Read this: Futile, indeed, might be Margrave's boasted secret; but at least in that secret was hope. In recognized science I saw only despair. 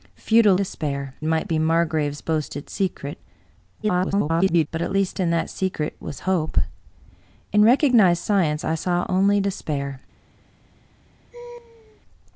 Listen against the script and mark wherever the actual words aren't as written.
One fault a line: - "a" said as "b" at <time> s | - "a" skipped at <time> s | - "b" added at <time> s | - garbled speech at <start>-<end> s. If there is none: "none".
- "indeed" said as "despair" at 0.5 s
- garbled speech at 3.8-4.7 s